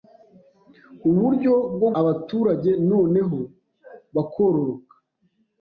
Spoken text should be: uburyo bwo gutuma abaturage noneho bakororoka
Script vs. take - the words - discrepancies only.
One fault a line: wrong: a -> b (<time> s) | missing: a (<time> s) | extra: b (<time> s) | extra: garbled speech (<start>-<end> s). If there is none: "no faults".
missing: gutuma (1.9 s)